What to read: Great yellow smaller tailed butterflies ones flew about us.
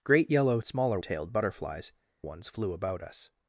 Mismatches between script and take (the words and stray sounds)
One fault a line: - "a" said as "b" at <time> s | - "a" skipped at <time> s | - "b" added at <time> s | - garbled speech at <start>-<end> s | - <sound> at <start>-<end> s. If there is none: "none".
none